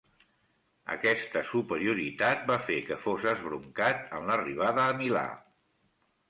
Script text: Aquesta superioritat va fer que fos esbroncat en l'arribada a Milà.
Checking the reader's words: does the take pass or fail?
pass